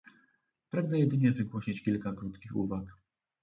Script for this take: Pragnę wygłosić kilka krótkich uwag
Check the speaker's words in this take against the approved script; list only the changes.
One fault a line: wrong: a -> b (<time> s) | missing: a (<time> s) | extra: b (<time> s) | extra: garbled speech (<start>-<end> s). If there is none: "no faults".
extra: jedynie (1.0 s)